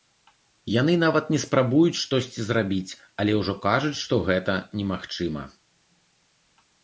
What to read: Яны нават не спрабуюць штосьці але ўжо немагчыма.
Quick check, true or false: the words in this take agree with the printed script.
false